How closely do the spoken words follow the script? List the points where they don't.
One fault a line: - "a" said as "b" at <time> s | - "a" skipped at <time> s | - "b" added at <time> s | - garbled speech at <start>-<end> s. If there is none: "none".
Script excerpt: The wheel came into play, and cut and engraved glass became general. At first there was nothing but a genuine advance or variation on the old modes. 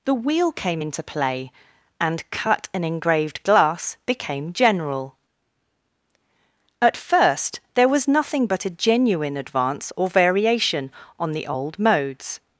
none